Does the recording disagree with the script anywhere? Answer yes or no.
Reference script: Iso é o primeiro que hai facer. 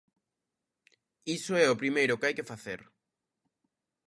yes